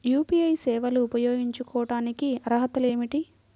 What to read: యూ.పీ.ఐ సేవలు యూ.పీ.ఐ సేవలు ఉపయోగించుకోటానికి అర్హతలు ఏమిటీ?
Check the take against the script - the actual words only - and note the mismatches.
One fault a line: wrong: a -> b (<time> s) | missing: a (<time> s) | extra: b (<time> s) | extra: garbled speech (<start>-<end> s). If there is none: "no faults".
missing: యూ.పీ.ఐ సేవలు (1.0 s)